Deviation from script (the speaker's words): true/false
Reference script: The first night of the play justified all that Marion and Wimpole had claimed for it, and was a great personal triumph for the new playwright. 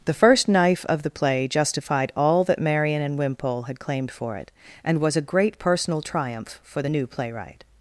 true